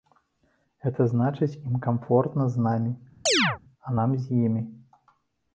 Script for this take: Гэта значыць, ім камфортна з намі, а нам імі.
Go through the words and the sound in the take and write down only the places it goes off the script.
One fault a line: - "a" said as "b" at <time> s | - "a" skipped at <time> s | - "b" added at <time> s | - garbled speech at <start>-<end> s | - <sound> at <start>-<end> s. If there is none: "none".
- chirp at 3.3-3.6 s
- "з" added at 4.3 s